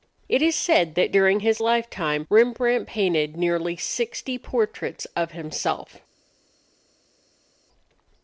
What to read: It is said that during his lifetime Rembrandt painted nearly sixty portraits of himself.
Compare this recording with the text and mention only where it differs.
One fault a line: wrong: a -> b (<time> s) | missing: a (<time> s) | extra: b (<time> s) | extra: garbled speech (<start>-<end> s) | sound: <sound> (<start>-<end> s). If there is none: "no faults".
no faults